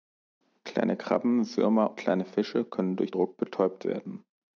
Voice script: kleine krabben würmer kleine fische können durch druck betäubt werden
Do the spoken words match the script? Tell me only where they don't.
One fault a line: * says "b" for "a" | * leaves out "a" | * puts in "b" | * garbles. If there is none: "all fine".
all fine